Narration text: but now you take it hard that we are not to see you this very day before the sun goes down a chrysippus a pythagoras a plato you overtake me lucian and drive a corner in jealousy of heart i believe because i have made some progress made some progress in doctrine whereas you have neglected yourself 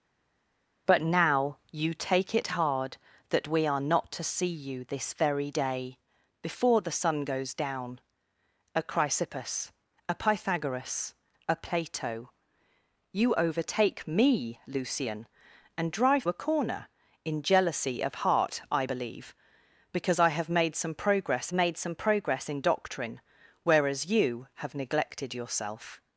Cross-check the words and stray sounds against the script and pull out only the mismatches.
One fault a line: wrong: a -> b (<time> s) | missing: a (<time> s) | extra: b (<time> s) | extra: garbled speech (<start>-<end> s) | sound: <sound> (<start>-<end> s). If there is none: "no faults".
no faults